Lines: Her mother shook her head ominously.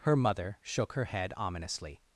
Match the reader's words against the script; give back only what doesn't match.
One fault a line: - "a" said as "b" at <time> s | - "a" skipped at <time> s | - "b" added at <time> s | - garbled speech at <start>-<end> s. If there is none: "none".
none